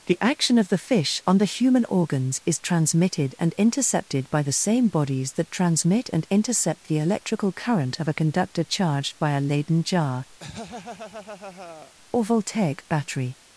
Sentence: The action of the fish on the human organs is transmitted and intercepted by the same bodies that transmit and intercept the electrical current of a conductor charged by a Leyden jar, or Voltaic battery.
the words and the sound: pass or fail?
fail